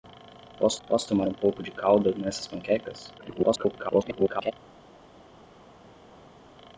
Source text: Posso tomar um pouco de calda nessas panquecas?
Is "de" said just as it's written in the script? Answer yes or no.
yes